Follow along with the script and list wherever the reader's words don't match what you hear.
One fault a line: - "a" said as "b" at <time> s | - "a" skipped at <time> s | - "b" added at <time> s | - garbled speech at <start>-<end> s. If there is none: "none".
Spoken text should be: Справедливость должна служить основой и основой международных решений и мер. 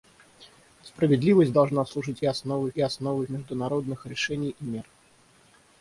none